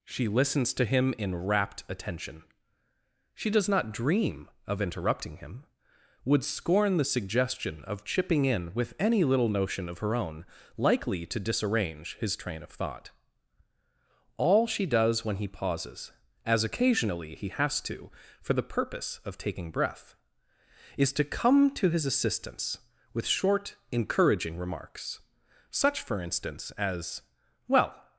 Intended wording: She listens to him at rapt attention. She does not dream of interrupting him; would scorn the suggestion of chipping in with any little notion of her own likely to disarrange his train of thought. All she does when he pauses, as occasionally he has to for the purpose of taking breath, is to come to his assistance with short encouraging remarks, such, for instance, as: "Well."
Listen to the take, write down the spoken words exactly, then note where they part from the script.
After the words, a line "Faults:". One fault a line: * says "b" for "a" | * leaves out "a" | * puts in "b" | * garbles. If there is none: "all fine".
She listens to him in rapt attention. She does not dream of interrupting him; would scorn the suggestion of chipping in with any little notion of her own likely to disarrange his train of thought. All she does when he pauses, as occasionally he has to for the purpose of taking breath, is to come to his assistance with short encouraging remarks, such, for instance, as: "Well."
Faults:
* says "in" for "at"